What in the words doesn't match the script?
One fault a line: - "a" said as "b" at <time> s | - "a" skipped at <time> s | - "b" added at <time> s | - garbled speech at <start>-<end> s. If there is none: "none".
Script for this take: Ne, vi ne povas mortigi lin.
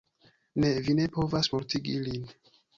none